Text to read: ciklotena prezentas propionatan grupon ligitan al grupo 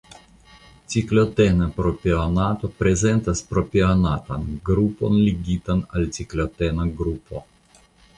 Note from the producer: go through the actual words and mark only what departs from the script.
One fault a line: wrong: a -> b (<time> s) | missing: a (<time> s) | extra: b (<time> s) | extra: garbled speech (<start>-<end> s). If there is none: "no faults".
extra: propionato (1.8 s)
extra: ciklotena (6.2 s)